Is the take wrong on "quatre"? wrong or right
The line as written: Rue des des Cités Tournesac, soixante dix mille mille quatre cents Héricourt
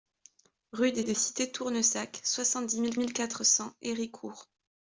right